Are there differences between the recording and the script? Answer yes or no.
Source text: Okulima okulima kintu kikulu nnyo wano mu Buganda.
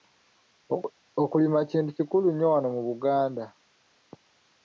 yes